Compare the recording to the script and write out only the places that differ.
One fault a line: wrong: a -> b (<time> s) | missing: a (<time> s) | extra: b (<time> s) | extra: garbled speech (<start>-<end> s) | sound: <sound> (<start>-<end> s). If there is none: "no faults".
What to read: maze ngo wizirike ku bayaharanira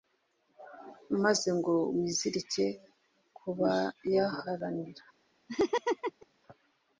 sound: laugh (5.5-6.3 s)